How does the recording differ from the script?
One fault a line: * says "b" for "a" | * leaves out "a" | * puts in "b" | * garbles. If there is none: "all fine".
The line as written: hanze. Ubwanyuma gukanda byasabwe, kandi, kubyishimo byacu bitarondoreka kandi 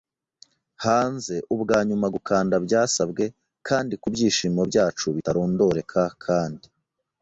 all fine